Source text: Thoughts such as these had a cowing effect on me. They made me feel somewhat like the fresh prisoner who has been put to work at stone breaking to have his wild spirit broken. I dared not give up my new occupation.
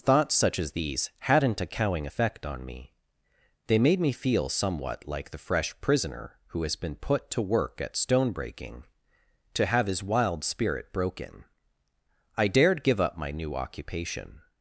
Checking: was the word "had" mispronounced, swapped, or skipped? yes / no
yes